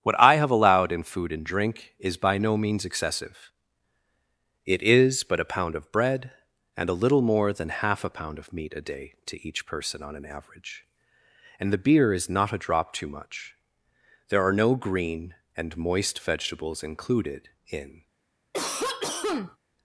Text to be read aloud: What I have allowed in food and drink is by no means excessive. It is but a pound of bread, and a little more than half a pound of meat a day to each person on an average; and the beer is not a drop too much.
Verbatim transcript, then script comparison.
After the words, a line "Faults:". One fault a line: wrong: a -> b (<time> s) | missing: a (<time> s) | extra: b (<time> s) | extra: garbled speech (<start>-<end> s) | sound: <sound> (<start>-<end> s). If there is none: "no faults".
What I have allowed in food and drink is by no means excessive. It is but a pound of bread, and a little more than half a pound of meat a day to each person on an average; and the beer is not a drop too much. There are no green and moist vegetables included in
Faults:
extra: There are no green and moist vegetables included in (14.3 s)
sound: cough (18.5-19.6 s)